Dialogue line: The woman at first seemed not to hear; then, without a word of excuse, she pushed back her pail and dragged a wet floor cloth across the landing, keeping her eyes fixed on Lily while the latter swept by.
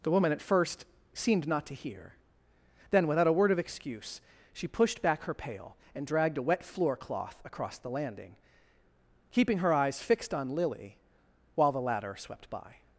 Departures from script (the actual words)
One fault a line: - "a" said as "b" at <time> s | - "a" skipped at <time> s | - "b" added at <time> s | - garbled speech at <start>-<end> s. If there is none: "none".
none